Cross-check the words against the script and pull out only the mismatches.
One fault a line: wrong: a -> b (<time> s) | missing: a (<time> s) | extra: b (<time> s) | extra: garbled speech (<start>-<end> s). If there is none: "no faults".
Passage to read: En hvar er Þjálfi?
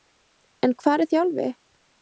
no faults